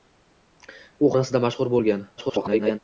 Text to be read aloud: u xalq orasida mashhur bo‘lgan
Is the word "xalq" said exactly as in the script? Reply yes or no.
no